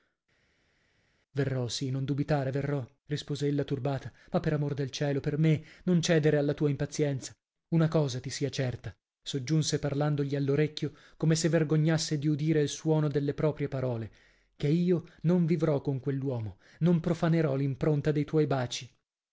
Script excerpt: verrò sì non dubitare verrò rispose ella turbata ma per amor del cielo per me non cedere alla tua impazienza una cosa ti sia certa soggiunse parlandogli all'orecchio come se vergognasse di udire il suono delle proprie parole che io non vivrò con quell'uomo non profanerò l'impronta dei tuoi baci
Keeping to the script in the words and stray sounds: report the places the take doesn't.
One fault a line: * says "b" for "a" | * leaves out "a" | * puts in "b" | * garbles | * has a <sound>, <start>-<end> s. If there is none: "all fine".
all fine